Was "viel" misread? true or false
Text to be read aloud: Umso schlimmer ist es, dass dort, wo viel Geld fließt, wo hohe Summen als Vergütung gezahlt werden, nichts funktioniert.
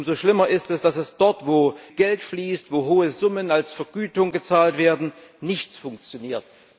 true